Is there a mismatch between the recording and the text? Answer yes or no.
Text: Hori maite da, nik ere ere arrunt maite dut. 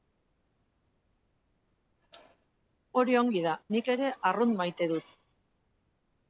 yes